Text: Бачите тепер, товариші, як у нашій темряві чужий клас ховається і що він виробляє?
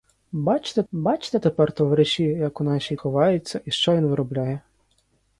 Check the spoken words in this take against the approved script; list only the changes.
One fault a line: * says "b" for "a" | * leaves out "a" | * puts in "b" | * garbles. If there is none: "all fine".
* puts in "бачите"
* leaves out "темряві чужий клас"